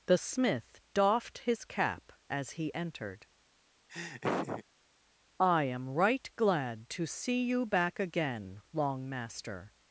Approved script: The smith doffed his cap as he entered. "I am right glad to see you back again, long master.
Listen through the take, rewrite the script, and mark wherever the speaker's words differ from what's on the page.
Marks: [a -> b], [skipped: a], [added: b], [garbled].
The smith doffed his cap as he entered. "I am right glad to see you back again, long master.